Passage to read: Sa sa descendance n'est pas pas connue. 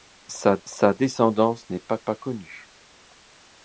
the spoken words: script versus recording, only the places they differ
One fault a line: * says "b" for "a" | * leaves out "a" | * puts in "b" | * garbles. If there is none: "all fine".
all fine